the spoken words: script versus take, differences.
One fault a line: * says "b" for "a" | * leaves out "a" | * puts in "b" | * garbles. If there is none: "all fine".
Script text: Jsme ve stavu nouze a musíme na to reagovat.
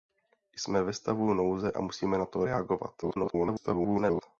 * garbles